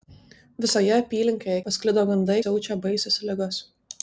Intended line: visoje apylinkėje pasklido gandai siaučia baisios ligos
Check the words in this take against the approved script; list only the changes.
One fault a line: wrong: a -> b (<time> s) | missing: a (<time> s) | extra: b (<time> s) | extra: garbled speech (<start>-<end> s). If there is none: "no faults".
no faults